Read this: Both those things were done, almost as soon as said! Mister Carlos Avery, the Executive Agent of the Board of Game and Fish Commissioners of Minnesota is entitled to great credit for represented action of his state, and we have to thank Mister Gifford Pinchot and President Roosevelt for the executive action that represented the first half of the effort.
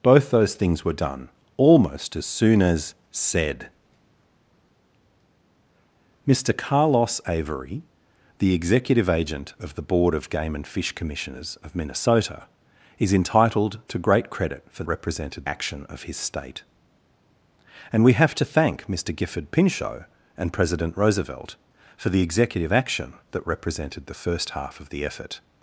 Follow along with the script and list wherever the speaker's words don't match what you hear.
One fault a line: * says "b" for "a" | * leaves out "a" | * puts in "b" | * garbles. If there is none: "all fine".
all fine